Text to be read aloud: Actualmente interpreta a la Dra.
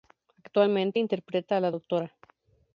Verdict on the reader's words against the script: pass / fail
pass